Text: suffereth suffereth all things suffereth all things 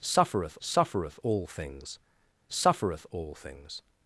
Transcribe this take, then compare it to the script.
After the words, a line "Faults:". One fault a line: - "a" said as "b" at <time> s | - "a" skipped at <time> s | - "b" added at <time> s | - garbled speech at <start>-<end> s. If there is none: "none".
suffereth suffereth all things suffereth all things
Faults:
none